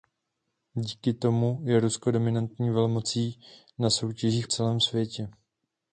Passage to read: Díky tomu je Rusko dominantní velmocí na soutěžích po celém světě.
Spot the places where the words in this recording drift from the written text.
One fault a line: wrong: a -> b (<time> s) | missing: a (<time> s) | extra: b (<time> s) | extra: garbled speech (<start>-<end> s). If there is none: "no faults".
missing: po (4.5 s)